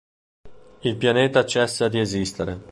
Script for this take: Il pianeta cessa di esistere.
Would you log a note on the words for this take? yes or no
no